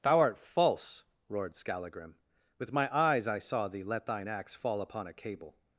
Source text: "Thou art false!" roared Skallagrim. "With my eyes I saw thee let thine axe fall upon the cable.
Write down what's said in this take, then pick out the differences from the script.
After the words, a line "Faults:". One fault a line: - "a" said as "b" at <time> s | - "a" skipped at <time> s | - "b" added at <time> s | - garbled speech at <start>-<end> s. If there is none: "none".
"Thou art false!" roared Skallagrim. "With my eyes I saw thee let thine axe fall upon a cable.
Faults:
- "the" said as "a" at 5.1 s